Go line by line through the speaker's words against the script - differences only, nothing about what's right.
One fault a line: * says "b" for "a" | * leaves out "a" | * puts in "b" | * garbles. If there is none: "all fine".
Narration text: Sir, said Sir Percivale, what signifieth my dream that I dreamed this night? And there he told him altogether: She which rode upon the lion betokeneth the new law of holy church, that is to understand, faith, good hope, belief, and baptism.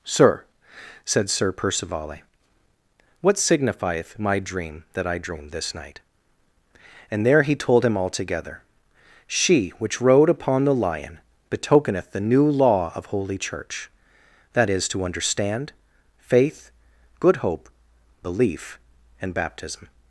all fine